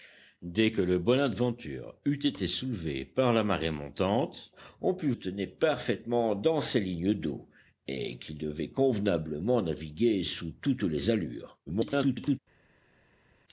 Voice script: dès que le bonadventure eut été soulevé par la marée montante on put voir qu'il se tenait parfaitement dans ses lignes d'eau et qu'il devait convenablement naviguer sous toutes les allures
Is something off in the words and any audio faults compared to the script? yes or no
yes